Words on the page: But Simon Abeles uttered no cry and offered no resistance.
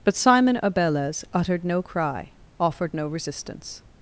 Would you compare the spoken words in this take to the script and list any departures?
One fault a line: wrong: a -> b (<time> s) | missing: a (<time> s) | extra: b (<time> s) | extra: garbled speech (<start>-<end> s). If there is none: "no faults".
missing: and (2.3 s)